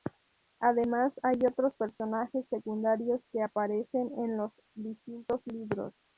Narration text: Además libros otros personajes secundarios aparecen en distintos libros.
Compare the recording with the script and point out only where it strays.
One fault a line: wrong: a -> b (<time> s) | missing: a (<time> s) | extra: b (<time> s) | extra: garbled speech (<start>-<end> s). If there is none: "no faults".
wrong: libros -> hay (1.2 s)
extra: que (3.3 s)
extra: los (4.4 s)